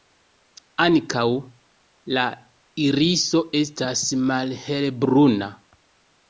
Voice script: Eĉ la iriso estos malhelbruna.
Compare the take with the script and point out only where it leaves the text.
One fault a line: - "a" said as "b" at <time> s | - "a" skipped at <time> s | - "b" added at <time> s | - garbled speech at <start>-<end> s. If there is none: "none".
- "Eĉ" said as "Ankaŭ" at 0.8 s
- "estos" said as "estas" at 3.6 s